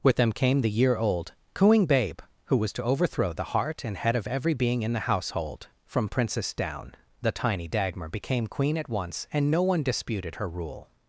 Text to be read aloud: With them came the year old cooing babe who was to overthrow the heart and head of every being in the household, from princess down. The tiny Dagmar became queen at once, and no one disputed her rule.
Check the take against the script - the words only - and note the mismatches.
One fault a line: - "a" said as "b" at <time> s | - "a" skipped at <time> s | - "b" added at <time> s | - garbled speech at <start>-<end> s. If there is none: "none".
none